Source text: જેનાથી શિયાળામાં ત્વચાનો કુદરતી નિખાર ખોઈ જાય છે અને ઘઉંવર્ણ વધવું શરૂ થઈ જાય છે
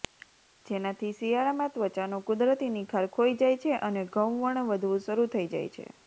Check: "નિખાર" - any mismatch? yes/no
no